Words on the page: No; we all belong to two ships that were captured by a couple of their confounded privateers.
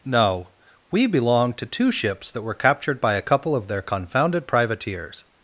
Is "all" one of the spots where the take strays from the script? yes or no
yes